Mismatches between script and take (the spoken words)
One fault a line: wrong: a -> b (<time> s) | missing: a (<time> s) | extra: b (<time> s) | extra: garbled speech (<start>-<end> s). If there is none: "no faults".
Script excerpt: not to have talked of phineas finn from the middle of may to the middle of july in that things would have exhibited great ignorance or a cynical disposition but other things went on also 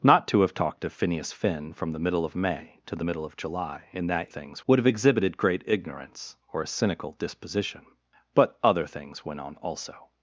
no faults